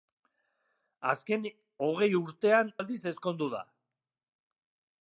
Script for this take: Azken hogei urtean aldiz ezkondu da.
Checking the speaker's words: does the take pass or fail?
pass